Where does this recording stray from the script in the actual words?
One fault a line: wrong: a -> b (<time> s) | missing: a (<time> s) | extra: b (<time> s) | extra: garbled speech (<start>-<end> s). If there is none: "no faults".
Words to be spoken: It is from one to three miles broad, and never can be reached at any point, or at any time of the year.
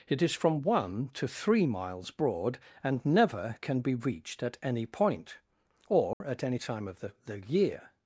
extra: the (7.2 s)